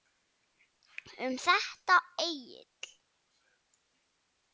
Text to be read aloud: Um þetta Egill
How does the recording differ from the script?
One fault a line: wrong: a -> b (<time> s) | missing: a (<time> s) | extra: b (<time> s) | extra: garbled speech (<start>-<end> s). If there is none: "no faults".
no faults